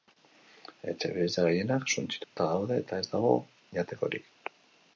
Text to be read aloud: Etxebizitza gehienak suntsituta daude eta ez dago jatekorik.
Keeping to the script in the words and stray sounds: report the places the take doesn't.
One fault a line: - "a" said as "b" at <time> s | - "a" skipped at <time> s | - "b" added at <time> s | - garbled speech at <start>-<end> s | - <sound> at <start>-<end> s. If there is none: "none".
- dropout at 2.2-2.4 s